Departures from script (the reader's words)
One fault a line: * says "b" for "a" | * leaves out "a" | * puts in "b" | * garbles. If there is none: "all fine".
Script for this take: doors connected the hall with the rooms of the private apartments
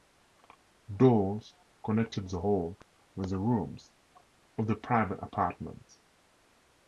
all fine